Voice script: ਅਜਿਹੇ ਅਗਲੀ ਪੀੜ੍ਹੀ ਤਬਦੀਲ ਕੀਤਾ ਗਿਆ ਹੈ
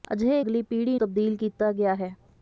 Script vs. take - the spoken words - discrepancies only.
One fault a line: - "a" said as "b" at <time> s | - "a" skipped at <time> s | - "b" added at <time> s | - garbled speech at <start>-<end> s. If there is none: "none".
none